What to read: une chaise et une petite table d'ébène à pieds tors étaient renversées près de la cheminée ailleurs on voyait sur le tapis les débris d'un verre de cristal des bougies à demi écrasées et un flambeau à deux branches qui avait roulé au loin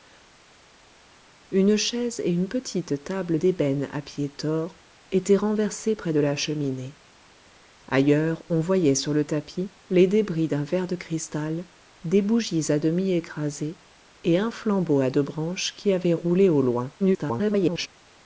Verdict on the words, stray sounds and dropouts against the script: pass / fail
fail